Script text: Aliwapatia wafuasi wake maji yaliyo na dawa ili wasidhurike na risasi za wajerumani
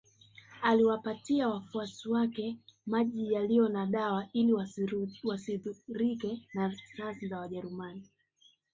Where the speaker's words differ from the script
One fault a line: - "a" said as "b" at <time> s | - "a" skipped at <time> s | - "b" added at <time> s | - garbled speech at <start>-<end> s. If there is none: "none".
none